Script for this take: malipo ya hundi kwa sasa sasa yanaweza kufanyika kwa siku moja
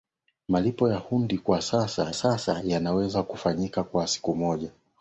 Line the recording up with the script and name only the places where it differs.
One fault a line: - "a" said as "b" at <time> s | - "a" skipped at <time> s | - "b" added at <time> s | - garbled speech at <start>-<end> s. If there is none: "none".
none